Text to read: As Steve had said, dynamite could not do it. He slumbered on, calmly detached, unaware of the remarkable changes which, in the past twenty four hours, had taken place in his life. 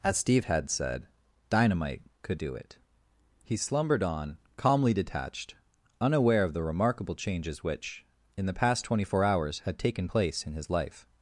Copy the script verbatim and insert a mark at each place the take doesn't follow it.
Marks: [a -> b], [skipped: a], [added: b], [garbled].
As Steve had said, dynamite could [skipped: not] do it. He slumbered on, calmly detached, unaware of the remarkable changes which, in the past twenty four hours, had taken place in his life.